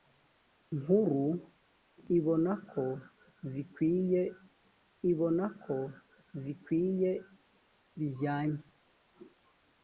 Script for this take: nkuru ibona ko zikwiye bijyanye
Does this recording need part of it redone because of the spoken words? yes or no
yes